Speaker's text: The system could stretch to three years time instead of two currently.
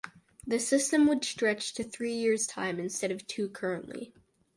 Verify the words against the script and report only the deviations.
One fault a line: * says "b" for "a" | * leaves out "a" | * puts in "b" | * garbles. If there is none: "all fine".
* says "would" for "could"